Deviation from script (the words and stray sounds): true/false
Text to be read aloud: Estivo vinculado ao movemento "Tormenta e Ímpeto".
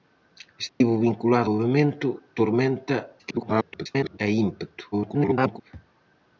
true